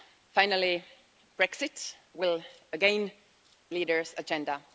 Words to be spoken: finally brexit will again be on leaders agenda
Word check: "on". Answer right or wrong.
wrong